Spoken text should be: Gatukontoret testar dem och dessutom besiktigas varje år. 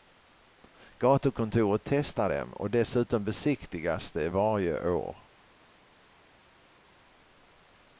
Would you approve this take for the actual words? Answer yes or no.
no